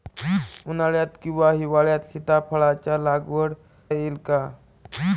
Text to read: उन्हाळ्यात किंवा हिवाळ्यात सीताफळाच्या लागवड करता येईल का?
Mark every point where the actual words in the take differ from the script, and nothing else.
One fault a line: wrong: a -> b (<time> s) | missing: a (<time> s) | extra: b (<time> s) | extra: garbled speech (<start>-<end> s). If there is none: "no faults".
missing: करता (3.5 s)